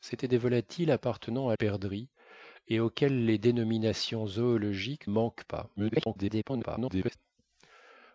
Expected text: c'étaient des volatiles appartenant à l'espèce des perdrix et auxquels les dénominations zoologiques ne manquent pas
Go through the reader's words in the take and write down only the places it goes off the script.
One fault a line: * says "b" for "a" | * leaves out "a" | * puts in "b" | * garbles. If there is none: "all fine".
* leaves out "l'espèce des"
* leaves out "ne"
* garbles